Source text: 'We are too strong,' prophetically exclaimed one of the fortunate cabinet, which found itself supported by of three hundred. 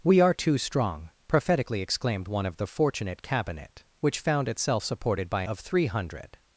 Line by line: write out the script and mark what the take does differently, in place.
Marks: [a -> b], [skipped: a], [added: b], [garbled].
'We are too strong,' prophetically exclaimed one of the fortunate cabinet, which found itself supported by of three hundred.